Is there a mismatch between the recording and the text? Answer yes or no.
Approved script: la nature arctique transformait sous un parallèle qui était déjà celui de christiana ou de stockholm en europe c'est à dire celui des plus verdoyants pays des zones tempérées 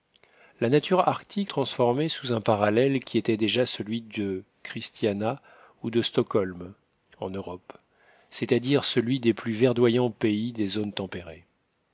no